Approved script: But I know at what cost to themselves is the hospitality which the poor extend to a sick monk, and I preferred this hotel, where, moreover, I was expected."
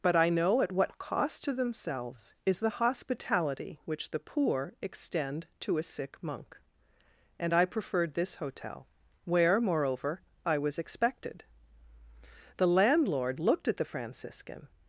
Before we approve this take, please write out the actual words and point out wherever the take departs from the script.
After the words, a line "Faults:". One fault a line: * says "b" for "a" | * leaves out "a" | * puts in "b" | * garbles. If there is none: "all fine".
But I know at what cost to themselves is the hospitality which the poor extend to a sick monk, and I preferred this hotel, where, moreover, I was expected." The landlord looked at the Franciscan
Faults:
* puts in "The landlord looked at the Franciscan"